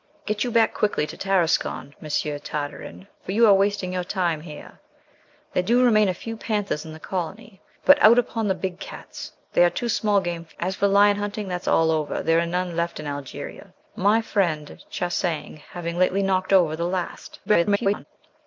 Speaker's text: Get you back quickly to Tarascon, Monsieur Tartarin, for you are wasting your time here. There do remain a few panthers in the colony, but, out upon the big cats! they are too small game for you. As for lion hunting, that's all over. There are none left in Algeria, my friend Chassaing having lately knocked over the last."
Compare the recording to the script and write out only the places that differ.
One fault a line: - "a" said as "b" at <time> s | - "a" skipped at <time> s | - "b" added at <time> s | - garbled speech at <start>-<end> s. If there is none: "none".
- "you" skipped at 10.6 s
- garbled speech at 17.5-18.0 s